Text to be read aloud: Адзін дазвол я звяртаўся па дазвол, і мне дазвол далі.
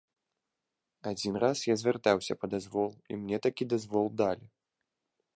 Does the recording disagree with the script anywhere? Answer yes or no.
yes